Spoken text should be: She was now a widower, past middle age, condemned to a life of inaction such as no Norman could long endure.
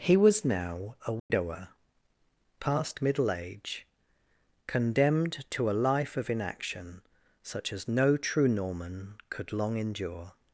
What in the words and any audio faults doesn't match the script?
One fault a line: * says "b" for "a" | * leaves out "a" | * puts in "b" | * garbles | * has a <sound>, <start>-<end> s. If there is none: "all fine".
* says "He" for "She"
* has a dropout, 1.2-1.3 s
* puts in "true"